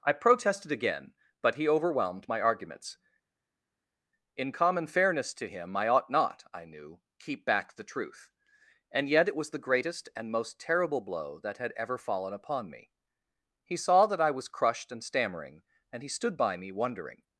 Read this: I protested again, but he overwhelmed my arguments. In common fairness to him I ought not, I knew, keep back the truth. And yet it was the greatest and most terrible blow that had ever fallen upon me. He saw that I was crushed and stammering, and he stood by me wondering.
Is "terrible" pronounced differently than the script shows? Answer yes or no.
no